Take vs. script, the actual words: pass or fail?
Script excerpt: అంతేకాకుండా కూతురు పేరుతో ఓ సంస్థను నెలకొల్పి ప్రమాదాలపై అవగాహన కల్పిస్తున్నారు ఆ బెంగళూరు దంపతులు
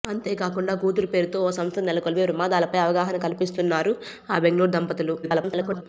fail